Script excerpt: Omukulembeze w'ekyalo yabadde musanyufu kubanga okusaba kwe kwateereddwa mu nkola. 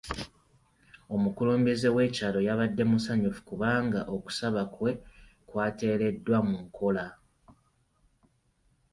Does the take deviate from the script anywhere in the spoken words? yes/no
no